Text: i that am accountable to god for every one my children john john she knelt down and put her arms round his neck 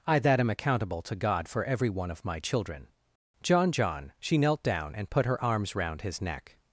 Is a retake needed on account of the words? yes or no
yes